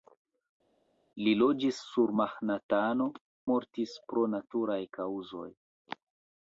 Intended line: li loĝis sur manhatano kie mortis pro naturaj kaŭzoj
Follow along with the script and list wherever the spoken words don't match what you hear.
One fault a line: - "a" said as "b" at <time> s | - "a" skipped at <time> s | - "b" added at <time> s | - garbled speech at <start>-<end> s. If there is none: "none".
- "kie" skipped at 3.1 s